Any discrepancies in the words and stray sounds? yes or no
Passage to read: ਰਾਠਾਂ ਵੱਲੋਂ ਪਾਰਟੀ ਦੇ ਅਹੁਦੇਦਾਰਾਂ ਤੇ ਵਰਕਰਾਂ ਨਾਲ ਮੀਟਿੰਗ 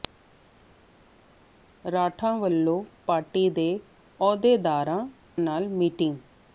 yes